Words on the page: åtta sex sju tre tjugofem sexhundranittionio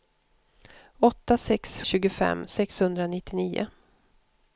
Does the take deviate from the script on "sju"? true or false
true